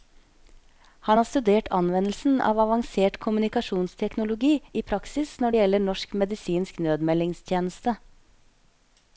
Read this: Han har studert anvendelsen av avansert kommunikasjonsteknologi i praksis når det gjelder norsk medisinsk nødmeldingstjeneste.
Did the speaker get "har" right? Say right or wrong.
right